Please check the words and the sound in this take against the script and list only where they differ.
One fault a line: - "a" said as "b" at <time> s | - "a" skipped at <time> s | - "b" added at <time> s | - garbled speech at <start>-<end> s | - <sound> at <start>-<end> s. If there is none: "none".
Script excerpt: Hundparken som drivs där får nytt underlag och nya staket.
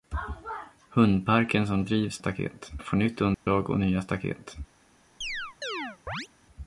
- "där" said as "staket" at 2.2 s
- dropout at 3.3-3.5 s
- chirp at 5.2-6.3 s